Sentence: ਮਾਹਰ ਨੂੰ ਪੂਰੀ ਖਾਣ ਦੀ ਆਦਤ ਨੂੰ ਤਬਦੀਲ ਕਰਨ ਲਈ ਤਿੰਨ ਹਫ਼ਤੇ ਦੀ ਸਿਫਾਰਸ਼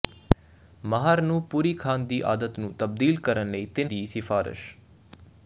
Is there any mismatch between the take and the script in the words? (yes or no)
yes